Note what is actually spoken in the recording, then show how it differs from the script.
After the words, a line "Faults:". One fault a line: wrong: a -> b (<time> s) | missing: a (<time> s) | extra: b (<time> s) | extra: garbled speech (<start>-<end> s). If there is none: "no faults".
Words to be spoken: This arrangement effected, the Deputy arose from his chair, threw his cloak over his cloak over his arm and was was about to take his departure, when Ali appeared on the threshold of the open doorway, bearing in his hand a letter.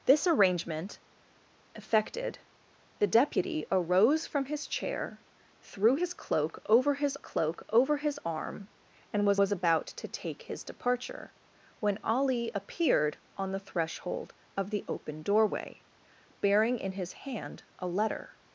This arrangement effected, the Deputy arose from his chair, threw his cloak over his cloak over his arm and was was about to take his departure, when Ali appeared on the threshold of the open doorway, bearing in his hand a letter.
Faults:
no faults